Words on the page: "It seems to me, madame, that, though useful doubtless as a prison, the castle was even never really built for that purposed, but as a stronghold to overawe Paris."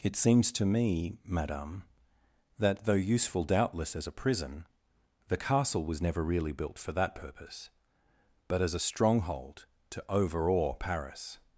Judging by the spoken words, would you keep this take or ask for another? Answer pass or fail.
fail